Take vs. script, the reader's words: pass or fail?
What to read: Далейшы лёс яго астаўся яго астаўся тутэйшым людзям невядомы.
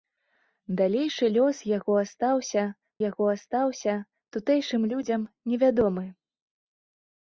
pass